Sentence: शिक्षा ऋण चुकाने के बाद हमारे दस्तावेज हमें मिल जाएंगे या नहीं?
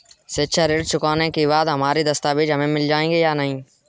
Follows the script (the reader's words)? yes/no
yes